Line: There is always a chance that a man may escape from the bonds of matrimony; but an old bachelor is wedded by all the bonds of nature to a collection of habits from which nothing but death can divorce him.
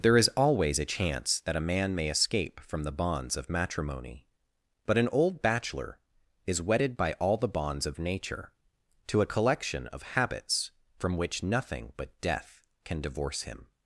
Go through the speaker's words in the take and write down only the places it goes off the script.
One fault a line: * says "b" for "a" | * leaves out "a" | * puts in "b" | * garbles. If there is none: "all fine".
all fine